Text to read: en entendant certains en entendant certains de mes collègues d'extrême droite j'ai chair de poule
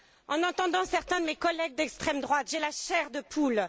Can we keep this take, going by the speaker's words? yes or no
no